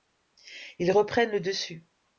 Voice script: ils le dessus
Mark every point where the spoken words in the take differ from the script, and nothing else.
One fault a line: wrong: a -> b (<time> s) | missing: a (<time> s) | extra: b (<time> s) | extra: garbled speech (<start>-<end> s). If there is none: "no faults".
extra: reprennent (0.9 s)